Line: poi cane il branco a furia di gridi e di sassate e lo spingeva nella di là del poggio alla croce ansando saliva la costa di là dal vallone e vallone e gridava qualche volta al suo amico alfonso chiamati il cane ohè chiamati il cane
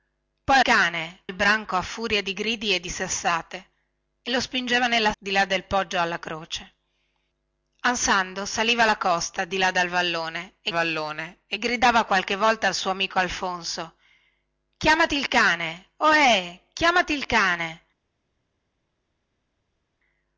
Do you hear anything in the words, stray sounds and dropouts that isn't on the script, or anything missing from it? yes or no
no